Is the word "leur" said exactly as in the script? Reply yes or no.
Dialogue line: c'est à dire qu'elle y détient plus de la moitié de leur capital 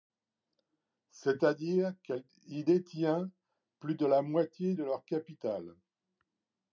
yes